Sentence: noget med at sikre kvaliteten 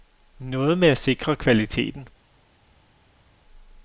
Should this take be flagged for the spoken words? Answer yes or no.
no